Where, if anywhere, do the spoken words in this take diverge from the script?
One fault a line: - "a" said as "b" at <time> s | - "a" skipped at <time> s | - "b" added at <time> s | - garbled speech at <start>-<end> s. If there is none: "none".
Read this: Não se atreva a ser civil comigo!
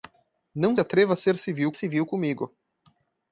- "se" skipped at 0.8 s
- "civil" added at 1.7 s